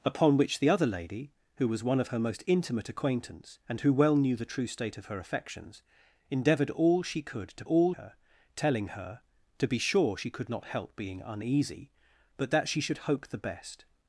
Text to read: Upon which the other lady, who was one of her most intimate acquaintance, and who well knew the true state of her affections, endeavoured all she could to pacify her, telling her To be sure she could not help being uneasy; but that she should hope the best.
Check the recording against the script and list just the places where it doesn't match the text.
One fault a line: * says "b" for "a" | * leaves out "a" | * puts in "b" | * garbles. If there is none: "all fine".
* says "all" for "pacify"